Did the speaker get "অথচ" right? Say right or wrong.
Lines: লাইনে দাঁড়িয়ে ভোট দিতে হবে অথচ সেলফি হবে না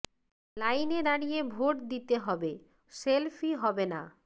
wrong